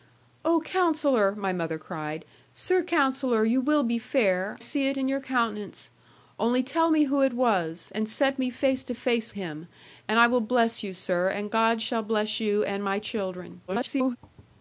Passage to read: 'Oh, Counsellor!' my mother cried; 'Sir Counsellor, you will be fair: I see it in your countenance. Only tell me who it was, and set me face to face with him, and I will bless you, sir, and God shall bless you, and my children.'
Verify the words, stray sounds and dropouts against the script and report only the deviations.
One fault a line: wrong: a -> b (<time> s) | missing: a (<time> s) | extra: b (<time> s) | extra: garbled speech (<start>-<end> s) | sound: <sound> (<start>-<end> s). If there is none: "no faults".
missing: I (4.6 s)
missing: with (9.3 s)
extra: garbled speech (13.7-14.2 s)